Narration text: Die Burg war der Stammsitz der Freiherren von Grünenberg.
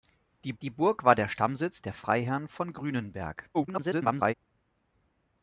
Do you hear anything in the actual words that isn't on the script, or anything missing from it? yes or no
yes